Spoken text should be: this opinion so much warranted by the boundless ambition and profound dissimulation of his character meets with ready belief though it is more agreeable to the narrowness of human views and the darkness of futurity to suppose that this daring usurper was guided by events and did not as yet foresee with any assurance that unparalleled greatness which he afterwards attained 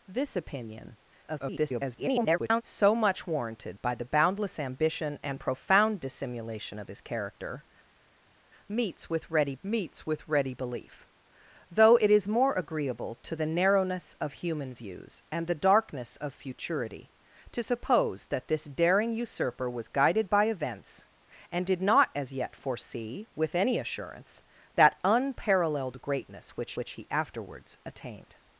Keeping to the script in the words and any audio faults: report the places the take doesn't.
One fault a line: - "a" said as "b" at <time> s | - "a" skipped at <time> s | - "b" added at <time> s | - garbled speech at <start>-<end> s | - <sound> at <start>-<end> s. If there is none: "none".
- garbled speech at 1.2-2.6 s
- "meets with ready" added at 9.6 s
- "which" added at 26.7 s